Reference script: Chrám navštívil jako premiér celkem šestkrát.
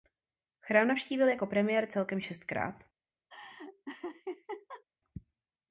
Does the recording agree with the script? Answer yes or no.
yes